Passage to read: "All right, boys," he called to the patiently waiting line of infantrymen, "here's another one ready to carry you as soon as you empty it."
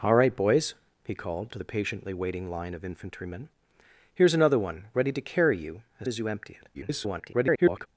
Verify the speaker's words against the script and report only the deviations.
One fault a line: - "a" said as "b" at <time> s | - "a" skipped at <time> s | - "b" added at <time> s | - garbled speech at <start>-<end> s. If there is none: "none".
- "soon" skipped at 6.1 s
- garbled speech at 6.7-7.9 s